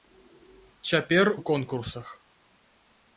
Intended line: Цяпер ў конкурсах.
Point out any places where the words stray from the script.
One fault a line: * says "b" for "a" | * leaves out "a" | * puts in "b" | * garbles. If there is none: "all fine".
all fine